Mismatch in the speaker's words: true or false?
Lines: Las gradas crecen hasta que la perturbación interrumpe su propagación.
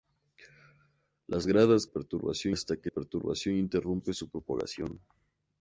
true